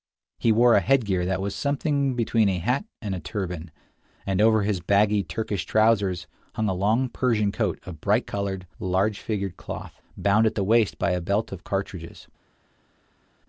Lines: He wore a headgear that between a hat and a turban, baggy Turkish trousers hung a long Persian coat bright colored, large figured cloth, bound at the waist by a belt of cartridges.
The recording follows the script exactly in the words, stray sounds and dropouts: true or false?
false